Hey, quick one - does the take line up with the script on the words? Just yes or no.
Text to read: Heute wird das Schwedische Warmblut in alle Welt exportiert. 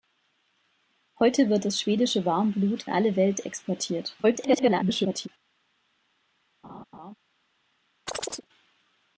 no